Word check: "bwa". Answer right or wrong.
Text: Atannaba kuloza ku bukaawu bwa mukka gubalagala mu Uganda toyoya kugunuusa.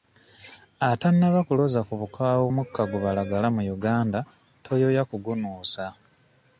wrong